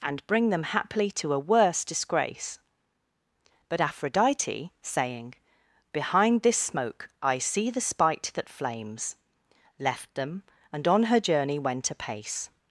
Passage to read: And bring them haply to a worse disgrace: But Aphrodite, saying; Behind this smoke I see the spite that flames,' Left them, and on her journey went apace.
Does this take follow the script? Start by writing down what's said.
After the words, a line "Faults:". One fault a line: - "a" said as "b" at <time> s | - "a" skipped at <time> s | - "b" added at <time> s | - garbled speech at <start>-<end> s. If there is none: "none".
And bring them haply to a worse disgrace: But Aphrodite, saying; Behind this smoke I see the spite that flames,' Left them, and on her journey went apace.
Faults:
none